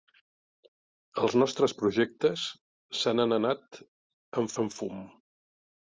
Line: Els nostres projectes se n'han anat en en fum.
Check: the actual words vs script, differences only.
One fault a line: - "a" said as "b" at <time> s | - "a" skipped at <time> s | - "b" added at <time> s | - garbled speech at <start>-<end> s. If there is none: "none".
none